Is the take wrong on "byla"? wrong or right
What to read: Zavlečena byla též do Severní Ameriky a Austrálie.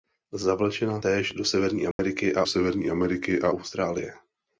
wrong